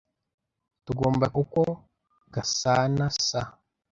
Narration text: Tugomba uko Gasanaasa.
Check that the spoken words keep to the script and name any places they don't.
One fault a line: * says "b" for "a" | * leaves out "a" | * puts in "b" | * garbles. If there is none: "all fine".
all fine